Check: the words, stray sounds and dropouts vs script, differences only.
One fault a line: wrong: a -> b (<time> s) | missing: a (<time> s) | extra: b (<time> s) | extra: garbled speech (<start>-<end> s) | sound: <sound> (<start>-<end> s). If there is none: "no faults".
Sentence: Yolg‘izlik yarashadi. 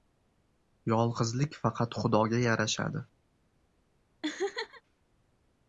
extra: faqat Xudoga (1.6 s)
sound: laugh (4.2-4.8 s)